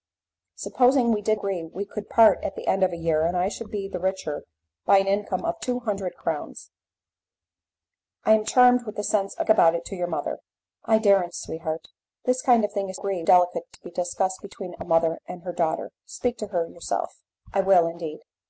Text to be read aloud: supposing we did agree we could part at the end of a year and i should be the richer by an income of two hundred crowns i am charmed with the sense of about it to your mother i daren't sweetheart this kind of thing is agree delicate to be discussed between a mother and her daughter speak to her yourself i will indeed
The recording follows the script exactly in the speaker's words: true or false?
true